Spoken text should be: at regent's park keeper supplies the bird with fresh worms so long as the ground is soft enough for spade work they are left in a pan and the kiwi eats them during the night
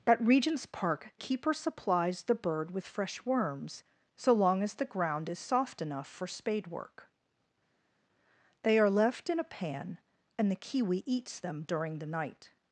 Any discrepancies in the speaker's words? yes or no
no